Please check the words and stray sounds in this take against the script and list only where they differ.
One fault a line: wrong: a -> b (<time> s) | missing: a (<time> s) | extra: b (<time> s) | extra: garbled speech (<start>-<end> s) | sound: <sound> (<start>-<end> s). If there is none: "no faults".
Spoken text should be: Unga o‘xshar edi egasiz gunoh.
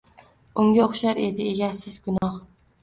sound: dropout (2.2-2.2 s)